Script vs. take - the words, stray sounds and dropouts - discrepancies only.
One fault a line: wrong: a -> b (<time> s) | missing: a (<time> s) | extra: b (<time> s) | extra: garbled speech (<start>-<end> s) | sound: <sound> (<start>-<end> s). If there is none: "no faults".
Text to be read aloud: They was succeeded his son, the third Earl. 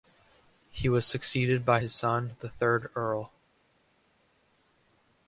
wrong: They -> He (0.7 s)
extra: by (1.6 s)